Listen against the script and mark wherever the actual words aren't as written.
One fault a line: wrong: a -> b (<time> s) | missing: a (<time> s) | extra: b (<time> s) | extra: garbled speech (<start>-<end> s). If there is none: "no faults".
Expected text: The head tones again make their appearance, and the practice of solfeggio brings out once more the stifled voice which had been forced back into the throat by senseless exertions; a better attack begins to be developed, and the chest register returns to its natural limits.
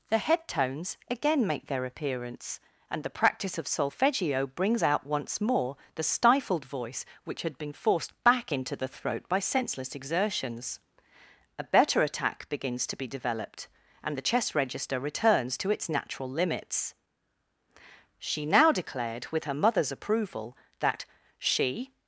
extra: She now declared with her mother's approval that she (18.2 s)